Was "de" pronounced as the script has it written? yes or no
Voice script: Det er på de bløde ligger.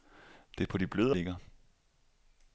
yes